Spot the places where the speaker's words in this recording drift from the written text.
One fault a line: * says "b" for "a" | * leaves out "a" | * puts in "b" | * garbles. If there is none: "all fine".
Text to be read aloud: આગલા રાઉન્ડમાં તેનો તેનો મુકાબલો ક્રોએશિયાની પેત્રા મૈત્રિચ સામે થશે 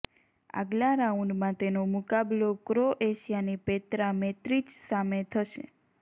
* leaves out "તેનો"